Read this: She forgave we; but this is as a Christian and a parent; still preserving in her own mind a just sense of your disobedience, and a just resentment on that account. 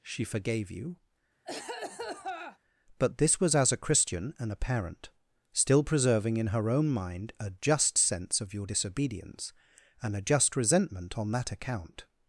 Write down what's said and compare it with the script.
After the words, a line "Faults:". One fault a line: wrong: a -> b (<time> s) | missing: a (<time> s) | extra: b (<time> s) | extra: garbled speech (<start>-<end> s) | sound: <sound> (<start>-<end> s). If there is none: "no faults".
She forgave you; but this was as a Christian and a parent; still preserving in her own mind a just sense of your disobedience, and a just resentment on that account.
Faults:
wrong: we -> you (0.7 s)
sound: cough (1.4-2.6 s)
wrong: is -> was (3.4 s)